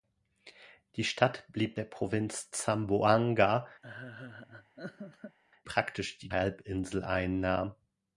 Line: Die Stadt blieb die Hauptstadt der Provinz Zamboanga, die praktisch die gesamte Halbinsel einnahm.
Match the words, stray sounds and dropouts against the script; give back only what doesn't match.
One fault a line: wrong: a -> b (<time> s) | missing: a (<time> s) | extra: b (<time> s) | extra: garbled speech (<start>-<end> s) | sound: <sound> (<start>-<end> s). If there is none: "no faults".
missing: die Hauptstadt (1.8 s)
missing: die (3.7 s)
sound: laugh (3.8-5.4 s)
missing: gesamte (6.3 s)